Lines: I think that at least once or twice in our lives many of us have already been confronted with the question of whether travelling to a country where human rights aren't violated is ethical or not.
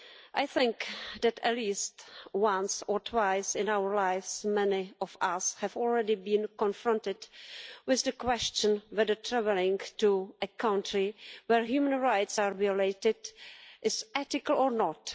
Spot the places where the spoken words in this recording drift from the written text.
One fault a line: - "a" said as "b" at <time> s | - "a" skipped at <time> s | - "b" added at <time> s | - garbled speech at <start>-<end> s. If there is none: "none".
- "aren't" said as "are" at 12.4 s